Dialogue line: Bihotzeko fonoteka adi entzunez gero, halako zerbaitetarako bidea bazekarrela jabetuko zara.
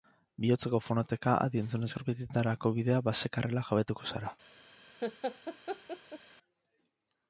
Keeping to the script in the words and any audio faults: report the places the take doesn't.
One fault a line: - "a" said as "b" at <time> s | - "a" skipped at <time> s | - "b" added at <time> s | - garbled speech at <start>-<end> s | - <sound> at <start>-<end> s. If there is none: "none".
- "gero halako" skipped at 1.9 s
- laugh at 5.0-6.2 s